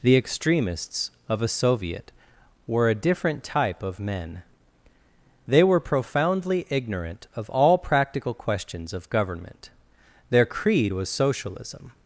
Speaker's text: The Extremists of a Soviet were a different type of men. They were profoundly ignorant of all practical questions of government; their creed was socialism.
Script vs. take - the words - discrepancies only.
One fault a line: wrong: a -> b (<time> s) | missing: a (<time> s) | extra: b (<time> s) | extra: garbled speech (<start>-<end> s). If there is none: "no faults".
no faults